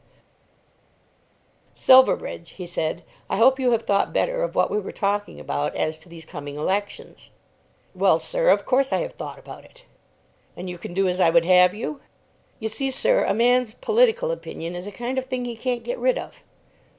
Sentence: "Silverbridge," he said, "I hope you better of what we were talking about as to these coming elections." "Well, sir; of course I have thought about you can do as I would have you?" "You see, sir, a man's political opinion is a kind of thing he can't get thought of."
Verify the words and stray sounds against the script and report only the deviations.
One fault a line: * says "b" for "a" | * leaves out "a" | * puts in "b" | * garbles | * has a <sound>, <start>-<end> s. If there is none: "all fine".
* puts in "have thought"
* puts in "it And"
* says "rid" for "thought"